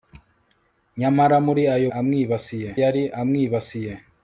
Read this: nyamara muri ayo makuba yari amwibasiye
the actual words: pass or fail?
fail